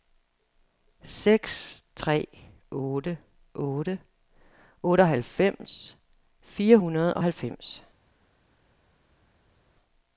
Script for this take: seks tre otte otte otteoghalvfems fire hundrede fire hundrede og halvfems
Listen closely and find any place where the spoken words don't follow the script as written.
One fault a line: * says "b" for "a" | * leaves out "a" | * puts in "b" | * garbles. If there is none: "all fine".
* leaves out "fire hundrede"